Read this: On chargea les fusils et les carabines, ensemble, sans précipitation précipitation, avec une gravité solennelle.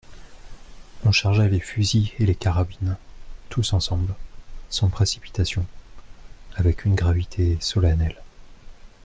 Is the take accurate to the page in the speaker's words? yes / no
no